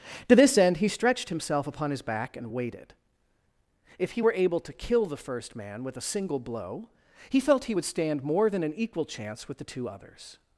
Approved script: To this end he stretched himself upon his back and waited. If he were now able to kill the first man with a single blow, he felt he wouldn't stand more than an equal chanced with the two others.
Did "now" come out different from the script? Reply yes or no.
yes